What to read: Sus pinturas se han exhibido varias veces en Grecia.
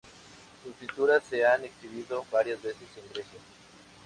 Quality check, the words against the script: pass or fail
pass